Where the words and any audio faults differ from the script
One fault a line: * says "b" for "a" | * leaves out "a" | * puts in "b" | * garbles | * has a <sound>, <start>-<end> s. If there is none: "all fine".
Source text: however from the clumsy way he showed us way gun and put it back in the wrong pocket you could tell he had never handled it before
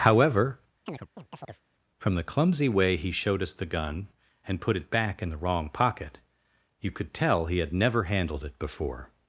* has a chirp, 0.9-1.6 s
* says "the" for "way"